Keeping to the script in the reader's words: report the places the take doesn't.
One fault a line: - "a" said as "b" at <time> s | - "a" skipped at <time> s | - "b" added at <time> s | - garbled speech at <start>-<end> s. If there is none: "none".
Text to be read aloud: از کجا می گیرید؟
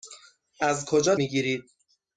none